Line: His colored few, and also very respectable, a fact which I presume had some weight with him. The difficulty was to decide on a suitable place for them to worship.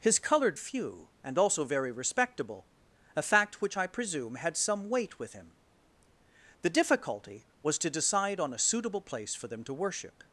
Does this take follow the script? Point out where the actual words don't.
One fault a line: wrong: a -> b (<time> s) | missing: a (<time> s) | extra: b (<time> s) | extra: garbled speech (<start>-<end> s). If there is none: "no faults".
no faults